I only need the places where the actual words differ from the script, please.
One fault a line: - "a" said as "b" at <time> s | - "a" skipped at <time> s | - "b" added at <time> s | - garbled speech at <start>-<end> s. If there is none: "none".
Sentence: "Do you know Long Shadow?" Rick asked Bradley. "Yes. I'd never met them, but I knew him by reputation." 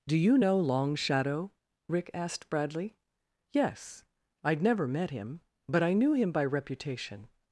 - "them" said as "him" at 5.1 s